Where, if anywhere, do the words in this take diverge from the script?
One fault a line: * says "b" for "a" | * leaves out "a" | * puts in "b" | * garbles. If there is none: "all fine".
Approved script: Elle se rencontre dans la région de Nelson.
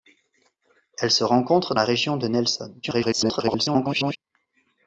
* leaves out "dans"
* garbles